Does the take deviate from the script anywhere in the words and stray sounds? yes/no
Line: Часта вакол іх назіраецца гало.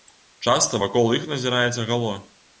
no